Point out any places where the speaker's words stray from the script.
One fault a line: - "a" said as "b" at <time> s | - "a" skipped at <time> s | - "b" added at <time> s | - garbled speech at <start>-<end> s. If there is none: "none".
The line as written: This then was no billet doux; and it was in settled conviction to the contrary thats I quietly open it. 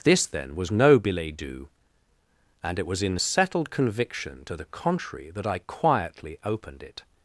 - "thats" said as "that" at 5.3 s
- "open" said as "opened" at 6.4 s